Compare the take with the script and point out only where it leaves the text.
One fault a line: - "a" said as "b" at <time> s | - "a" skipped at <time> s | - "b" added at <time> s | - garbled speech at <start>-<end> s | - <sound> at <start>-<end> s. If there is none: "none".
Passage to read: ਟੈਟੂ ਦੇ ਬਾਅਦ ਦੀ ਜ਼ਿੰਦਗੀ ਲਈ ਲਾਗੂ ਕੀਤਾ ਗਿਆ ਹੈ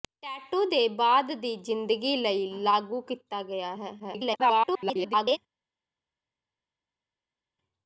- garbled speech at 4.0-5.4 s